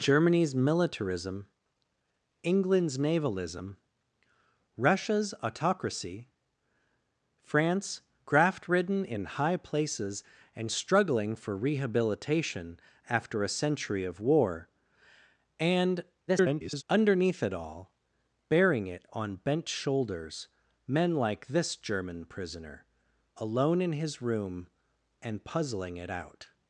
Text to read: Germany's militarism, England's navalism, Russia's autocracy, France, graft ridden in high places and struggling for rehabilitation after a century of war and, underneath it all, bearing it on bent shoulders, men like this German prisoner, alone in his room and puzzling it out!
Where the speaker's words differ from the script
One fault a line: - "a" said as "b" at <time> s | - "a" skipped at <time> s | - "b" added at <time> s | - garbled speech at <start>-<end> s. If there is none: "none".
- garbled speech at 16.3-16.8 s